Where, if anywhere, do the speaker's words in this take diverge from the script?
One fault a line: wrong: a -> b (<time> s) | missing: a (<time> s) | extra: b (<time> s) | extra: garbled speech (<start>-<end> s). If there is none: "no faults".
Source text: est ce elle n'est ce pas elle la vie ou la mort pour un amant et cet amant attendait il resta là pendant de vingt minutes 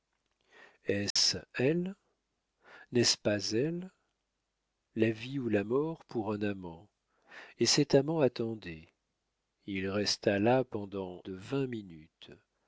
no faults